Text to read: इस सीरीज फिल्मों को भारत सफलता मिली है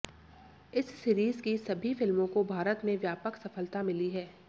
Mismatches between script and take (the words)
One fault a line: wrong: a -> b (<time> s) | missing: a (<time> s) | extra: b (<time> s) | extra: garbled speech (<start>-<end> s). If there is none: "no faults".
extra: की सभी (1.4 s)
extra: में व्यापक (2.8 s)